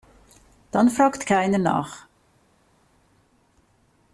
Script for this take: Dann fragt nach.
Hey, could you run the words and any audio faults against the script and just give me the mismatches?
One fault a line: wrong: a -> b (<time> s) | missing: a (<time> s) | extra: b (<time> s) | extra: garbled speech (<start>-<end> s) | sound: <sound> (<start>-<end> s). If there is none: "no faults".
extra: keiner (1.3 s)